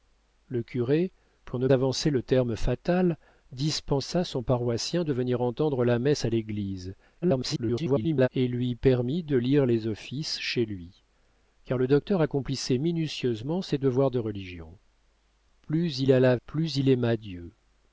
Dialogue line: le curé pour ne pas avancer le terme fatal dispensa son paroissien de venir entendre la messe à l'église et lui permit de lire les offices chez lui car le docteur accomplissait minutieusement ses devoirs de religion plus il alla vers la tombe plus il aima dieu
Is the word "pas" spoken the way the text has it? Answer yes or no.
no